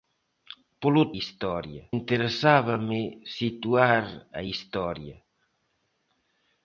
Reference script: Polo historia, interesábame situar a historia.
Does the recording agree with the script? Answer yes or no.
yes